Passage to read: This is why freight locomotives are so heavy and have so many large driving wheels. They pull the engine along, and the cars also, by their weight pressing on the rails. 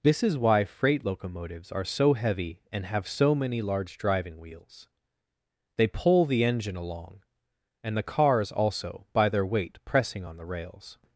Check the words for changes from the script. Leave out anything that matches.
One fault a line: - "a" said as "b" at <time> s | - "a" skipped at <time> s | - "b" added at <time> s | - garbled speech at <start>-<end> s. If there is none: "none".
none